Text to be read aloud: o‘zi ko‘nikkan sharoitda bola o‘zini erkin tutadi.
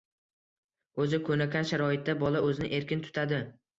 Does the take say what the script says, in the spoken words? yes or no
yes